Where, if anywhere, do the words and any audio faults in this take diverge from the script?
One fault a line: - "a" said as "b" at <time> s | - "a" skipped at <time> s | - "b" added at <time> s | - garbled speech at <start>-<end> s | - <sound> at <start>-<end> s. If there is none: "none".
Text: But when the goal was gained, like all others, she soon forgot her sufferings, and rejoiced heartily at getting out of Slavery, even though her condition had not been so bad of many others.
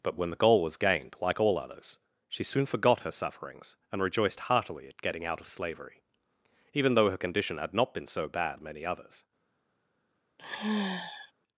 - sigh at 10.4-11.3 s